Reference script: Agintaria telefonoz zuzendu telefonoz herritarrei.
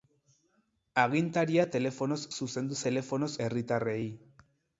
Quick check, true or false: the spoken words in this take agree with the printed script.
true